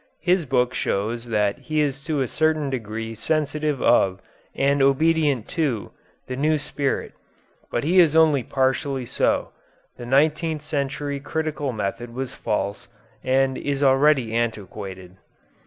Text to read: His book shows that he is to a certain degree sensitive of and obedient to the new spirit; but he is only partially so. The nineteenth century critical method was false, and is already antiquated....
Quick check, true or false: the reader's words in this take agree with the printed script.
true